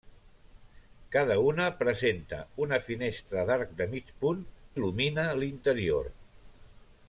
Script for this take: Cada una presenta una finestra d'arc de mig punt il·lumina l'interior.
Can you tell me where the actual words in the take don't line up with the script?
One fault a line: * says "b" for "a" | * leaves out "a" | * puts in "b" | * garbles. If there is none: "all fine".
all fine